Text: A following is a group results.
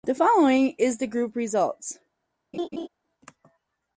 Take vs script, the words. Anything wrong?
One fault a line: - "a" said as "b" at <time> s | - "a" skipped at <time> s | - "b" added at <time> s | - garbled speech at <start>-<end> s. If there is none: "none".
- "A" said as "The" at 0.0 s
- "a" said as "the" at 1.0 s